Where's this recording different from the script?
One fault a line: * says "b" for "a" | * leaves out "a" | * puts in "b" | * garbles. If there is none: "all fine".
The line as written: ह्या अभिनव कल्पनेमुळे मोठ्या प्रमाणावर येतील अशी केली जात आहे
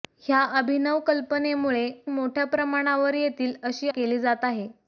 all fine